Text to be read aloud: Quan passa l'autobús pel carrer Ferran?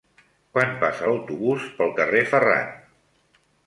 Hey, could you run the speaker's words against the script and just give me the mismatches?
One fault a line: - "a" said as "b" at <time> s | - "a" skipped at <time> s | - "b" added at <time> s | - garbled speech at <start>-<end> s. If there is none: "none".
none